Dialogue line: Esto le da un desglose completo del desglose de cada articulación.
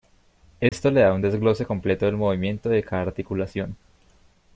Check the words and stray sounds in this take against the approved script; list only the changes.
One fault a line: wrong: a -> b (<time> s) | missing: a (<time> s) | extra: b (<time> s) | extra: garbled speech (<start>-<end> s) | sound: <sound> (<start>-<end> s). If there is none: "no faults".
sound: dropout (0.7-0.7 s)
wrong: desglose -> movimiento (2.2 s)